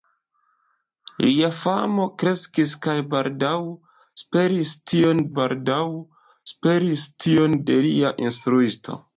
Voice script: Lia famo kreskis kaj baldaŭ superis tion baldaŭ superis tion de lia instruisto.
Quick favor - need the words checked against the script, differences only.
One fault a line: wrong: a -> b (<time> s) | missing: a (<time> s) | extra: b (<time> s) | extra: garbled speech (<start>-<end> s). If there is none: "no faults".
no faults